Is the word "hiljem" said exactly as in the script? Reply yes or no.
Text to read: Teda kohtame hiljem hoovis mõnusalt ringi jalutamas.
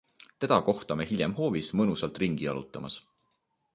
yes